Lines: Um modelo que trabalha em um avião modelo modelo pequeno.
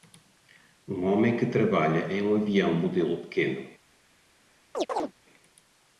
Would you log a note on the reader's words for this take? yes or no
yes